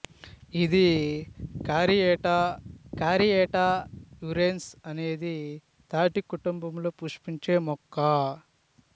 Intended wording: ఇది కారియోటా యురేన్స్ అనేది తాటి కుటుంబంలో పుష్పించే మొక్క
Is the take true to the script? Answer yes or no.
no